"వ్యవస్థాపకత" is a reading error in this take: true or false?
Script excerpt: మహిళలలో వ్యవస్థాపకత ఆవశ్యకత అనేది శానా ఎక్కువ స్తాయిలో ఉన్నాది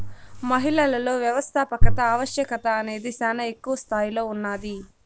false